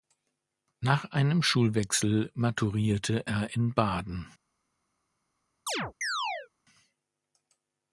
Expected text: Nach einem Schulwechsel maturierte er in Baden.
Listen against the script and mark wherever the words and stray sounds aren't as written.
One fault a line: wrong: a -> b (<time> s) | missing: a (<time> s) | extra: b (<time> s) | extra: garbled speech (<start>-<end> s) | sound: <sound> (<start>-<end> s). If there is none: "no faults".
sound: chirp (5.7-6.5 s)